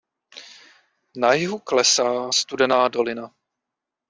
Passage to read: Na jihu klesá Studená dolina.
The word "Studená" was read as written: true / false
true